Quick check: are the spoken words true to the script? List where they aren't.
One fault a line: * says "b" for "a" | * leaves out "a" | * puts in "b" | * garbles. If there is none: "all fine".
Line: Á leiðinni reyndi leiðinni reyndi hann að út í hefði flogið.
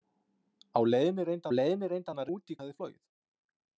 all fine